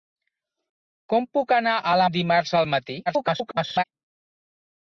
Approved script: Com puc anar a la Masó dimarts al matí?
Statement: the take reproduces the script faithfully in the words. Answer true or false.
false